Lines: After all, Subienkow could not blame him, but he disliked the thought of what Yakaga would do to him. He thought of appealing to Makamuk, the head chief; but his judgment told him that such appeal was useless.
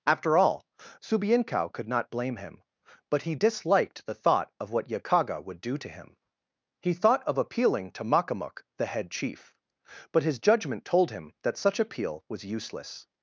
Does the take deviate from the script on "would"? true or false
false